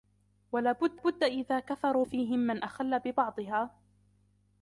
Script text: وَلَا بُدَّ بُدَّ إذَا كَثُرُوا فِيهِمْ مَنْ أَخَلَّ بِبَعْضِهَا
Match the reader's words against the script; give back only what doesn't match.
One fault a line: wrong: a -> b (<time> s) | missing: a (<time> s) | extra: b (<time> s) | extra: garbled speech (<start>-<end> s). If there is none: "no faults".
no faults